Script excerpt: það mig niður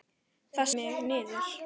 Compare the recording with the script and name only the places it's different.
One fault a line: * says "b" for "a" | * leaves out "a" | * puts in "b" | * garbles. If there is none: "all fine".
all fine